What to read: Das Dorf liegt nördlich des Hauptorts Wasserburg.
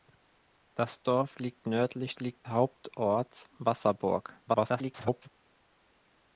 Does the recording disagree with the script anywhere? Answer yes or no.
yes